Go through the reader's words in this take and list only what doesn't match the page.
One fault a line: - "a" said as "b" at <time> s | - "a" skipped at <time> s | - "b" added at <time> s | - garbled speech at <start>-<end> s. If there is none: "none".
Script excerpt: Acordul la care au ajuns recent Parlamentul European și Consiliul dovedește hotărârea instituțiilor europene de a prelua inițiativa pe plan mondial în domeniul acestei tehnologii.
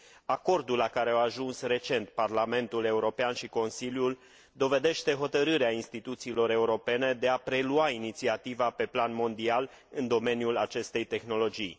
none